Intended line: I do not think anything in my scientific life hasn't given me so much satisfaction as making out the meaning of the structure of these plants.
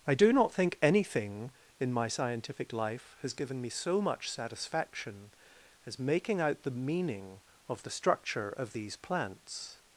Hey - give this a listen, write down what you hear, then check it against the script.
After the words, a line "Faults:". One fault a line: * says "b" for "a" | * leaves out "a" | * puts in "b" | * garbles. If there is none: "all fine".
I do not think anything in my scientific life has given me so much satisfaction as making out the meaning of the structure of these plants.
Faults:
* says "has" for "hasn't"